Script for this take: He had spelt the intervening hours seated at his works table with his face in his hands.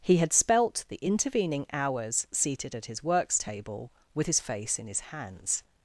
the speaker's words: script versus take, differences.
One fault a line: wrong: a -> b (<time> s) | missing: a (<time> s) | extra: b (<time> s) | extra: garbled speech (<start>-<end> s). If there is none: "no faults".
no faults